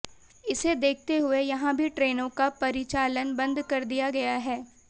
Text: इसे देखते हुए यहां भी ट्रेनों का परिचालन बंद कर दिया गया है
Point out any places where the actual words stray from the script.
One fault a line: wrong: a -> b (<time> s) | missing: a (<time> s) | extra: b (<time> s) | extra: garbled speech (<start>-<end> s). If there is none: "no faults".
no faults